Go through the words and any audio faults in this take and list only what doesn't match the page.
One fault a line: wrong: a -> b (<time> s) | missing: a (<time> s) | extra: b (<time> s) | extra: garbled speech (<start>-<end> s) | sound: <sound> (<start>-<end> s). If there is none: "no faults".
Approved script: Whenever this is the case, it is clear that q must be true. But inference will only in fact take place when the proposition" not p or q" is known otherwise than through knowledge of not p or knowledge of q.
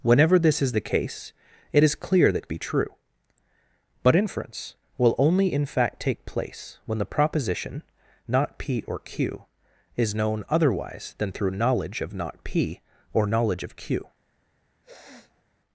missing: q must (2.5 s)
sound: sniff (14.8-15.4 s)